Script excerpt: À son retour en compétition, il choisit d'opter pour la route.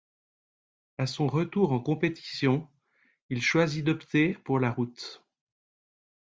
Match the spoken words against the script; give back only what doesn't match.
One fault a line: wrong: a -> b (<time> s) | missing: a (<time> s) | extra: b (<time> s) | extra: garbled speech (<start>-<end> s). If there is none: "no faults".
no faults